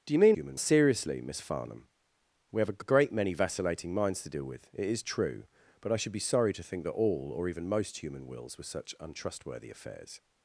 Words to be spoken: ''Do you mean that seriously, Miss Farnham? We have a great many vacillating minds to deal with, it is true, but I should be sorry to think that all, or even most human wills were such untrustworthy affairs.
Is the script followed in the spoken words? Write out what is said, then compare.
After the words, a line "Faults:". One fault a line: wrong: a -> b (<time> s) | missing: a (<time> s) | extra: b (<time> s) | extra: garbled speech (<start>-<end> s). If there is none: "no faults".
''Do you mean human seriously, Miss Farnham? We have a a great many vacillating minds to deal with, it is true, but I should be sorry to think that all, or even most human wills were such untrustworthy affairs.
Faults:
wrong: that -> human (0.3 s)
extra: a (2.8 s)